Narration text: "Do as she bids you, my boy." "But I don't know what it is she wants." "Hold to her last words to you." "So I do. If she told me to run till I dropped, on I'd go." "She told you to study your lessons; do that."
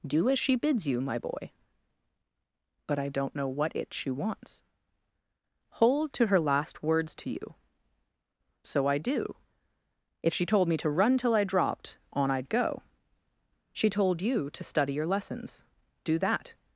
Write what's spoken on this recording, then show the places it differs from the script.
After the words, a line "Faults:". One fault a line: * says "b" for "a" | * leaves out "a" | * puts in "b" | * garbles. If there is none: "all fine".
"Do as she bids you, my boy." "But I don't know what it she wants." "Hold to her last words to you." "So I do. If she told me to run till I dropped, on I'd go." "She told you to study your lessons; do that."
Faults:
* leaves out "is"